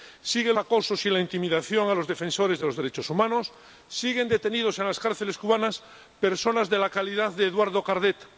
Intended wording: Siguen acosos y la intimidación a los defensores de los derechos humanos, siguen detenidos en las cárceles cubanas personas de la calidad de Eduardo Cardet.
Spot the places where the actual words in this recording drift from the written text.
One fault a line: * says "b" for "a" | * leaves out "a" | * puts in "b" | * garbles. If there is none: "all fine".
all fine